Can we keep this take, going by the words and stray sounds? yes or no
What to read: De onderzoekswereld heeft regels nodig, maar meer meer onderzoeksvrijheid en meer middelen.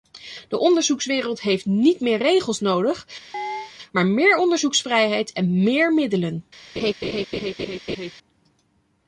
no